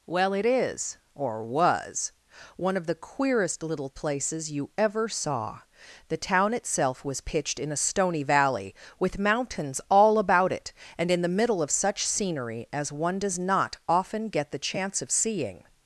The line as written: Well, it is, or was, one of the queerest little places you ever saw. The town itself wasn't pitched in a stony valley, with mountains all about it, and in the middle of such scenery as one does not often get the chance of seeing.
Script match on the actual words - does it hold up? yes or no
no